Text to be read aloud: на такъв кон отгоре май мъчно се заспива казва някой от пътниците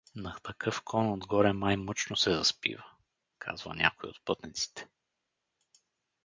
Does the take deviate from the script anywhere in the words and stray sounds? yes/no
no